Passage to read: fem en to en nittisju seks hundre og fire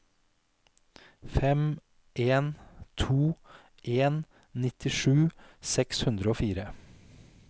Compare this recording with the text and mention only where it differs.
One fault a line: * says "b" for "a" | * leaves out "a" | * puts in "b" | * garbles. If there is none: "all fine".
all fine